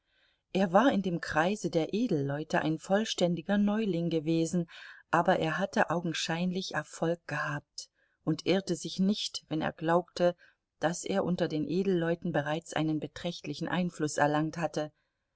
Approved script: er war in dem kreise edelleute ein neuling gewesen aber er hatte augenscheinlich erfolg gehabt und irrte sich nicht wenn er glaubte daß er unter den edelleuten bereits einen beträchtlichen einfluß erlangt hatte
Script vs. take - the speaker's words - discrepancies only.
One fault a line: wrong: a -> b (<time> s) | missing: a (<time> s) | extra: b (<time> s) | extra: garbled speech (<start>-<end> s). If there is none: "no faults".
extra: der (1.7 s)
extra: vollständiger (2.8 s)